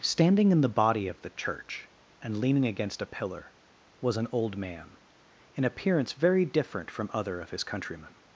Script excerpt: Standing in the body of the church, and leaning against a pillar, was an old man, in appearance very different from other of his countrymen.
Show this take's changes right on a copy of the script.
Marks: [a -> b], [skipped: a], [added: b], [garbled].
Standing in the body of the church, and leaning against a pillar, was an old man, in appearance very different from other of his countrymen.